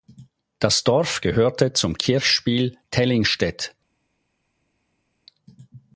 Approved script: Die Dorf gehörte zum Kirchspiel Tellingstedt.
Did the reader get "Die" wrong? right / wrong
wrong